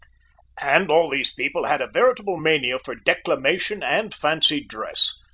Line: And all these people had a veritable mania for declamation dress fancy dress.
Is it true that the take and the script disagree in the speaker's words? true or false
true